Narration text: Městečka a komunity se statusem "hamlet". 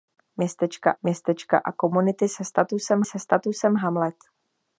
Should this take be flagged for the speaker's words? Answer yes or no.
yes